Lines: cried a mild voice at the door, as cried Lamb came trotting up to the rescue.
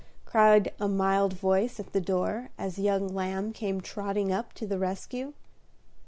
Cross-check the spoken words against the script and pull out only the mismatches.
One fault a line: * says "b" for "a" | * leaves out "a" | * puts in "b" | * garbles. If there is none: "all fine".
* says "young" for "cried"